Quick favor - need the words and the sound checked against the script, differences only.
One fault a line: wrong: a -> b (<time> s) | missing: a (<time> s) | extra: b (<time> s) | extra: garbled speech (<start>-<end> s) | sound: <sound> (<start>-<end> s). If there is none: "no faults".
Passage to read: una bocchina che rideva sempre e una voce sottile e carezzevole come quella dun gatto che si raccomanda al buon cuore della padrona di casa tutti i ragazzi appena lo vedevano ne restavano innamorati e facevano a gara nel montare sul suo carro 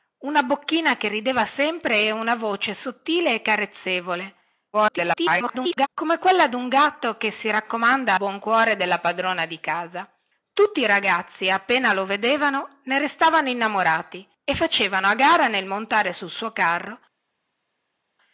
extra: garbled speech (4.7-5.9 s)
missing: al (8.1 s)